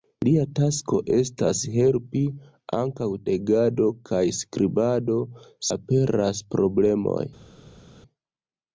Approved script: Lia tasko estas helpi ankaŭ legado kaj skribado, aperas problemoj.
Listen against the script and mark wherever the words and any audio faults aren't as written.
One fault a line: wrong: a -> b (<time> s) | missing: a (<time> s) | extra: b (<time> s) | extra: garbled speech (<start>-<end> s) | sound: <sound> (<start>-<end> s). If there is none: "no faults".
no faults